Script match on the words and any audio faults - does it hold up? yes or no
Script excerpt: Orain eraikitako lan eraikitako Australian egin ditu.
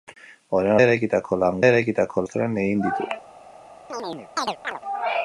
no